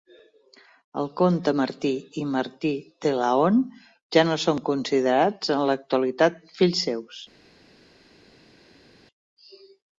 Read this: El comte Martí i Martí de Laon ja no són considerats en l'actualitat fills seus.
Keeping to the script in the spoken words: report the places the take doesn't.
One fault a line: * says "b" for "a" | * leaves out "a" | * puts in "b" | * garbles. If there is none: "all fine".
all fine